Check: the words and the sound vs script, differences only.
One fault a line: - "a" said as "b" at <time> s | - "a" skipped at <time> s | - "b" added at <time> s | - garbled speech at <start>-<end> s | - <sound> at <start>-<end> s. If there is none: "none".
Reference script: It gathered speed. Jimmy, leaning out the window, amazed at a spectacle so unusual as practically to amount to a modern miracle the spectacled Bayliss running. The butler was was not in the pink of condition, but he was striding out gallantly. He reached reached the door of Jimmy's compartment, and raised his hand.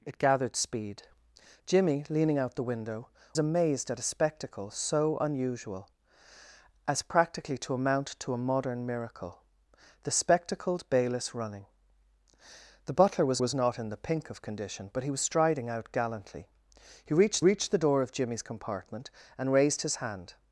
none